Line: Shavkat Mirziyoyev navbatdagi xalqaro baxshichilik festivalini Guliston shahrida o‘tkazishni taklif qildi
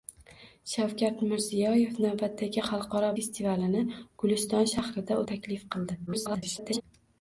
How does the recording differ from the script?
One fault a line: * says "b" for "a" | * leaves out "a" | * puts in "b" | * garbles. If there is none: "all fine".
* leaves out "baxshichilik"
* leaves out "o‘tkazishni"
* garbles